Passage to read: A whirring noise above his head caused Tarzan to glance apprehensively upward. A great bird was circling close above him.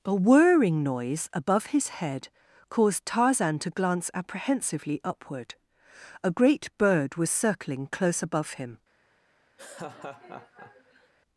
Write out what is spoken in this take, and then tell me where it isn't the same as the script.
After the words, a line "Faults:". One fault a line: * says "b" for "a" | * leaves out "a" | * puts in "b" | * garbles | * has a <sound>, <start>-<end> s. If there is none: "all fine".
A whirring noise above his head caused Tarzan to glance apprehensively upward. A great bird was circling close above him.
Faults:
* has a laugh, 9.6-11.1 s